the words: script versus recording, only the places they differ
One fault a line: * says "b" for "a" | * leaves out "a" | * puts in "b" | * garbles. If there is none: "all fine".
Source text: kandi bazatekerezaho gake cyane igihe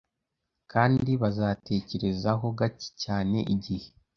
all fine